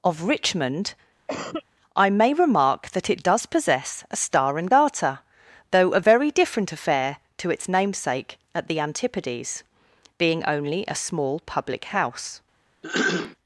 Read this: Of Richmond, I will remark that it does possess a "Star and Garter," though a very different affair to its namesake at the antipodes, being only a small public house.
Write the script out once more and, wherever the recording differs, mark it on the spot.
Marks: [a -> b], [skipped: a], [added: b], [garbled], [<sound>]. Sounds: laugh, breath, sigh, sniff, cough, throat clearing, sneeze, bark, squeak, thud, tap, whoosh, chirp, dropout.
Of Richmond, [cough] I [will -> may] remark that it does possess a "Star and Garter," though a very different affair to its namesake at the antipodes, being only a small public house. [throat clearing]